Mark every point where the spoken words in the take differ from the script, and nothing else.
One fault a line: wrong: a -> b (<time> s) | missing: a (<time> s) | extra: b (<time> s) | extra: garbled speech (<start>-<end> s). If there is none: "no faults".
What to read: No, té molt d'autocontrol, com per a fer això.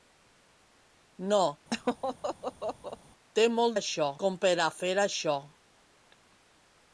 wrong: d'autocontrol -> això (3.8 s)